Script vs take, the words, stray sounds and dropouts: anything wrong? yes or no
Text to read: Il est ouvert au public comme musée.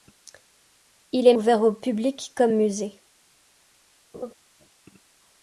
yes